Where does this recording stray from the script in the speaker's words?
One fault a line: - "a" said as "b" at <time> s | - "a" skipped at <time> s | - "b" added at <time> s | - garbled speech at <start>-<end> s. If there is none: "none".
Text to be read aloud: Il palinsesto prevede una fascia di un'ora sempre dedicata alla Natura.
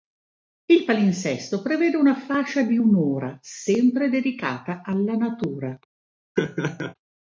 none